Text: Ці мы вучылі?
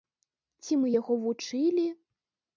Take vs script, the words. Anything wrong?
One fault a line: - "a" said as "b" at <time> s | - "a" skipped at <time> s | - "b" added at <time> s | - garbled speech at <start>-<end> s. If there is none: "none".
- "яго" added at 1.0 s